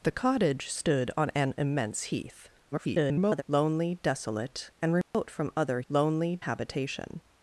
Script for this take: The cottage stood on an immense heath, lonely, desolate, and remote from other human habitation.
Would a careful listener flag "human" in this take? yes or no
yes